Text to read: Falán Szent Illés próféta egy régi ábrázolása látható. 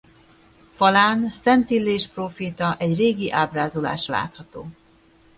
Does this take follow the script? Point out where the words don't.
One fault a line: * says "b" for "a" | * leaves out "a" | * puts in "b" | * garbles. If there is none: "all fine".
all fine